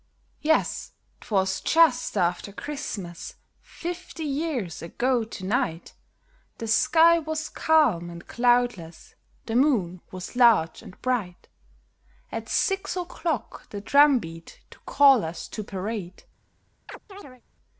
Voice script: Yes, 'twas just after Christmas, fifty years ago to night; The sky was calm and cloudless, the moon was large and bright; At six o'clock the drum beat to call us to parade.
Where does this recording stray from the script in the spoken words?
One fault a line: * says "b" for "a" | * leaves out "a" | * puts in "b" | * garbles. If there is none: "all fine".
all fine